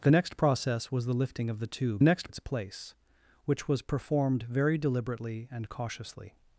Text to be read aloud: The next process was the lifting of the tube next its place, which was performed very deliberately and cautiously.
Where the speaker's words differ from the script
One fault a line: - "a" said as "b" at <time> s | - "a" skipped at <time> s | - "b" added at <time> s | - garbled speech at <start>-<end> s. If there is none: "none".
none